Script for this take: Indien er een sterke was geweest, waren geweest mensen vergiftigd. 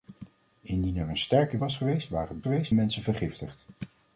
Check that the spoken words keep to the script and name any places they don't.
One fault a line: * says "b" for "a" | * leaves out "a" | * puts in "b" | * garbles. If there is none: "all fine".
all fine